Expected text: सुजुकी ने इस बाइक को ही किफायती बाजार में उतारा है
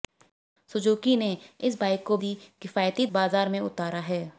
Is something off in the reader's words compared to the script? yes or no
no